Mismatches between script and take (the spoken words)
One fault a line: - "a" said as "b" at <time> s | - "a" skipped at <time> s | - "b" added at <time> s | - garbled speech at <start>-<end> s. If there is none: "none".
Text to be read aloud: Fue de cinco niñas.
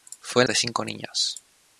none